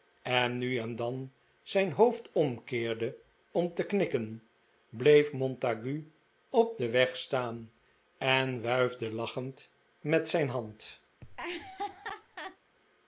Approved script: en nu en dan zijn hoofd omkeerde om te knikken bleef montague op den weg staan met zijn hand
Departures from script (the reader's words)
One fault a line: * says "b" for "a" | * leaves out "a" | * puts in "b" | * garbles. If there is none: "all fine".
* puts in "en wuifde lachend"